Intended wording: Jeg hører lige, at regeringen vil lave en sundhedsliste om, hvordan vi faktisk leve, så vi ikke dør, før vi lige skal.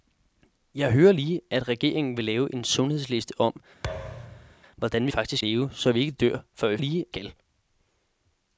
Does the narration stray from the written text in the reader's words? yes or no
no